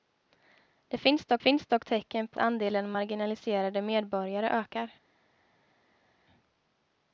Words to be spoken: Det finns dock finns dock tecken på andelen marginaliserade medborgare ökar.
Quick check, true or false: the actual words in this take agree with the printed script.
true